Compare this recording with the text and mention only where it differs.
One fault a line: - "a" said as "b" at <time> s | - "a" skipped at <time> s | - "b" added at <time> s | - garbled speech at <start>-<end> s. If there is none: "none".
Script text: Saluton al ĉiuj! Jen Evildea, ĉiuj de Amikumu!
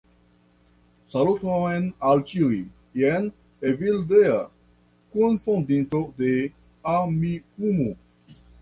- "ĉiuj" said as "kunfondinto" at 5.2 s